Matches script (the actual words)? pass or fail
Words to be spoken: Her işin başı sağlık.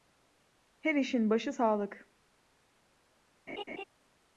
pass